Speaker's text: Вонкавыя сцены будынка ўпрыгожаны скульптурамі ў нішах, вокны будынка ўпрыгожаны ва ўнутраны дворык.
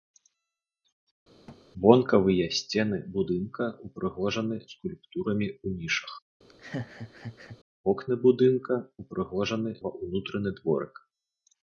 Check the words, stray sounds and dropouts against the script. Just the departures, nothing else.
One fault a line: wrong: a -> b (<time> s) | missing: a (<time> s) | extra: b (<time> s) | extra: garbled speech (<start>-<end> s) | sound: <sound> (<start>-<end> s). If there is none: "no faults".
sound: thud (1.5-1.6 s)
sound: laugh (6.5-7.6 s)